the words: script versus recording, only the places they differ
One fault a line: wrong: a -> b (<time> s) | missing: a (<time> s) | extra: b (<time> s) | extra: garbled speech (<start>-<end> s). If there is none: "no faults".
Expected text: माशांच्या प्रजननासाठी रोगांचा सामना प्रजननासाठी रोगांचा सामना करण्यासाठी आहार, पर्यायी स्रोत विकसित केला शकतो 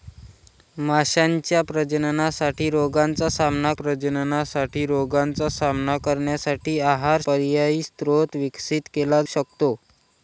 no faults